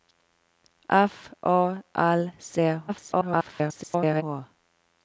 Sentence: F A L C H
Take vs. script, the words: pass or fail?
fail